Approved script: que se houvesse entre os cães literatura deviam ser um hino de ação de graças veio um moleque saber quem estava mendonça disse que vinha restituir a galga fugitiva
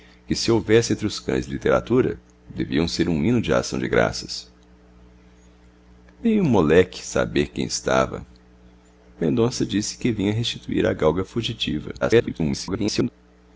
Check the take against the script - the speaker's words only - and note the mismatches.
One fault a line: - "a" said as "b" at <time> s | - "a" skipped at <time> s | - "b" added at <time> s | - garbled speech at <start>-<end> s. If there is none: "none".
- garbled speech at 12.0-13.1 s